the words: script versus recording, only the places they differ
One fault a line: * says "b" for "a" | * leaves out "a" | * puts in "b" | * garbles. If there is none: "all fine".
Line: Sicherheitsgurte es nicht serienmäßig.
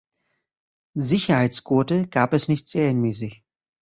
* puts in "gab"